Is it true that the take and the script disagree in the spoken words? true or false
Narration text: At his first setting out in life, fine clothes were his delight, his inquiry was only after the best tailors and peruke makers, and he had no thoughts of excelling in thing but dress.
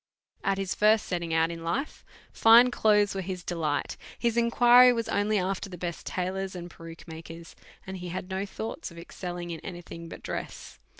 true